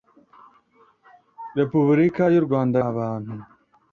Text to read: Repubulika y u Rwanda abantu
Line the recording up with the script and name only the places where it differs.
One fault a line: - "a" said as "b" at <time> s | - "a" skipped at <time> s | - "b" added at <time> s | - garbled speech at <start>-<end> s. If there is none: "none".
none